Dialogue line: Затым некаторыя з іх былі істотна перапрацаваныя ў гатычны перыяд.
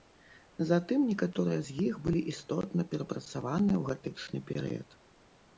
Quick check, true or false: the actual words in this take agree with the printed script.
true